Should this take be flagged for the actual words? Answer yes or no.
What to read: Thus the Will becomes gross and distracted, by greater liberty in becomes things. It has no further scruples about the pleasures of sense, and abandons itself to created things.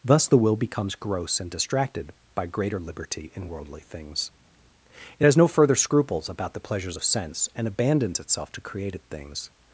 yes